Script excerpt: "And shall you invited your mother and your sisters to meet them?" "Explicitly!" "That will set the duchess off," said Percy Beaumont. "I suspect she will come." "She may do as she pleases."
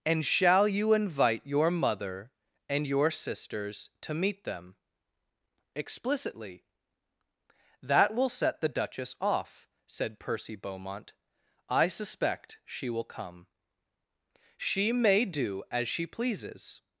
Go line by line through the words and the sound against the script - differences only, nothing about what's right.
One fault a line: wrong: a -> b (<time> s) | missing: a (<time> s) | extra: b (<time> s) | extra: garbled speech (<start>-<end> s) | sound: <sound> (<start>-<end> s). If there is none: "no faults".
wrong: invited -> invite (0.9 s)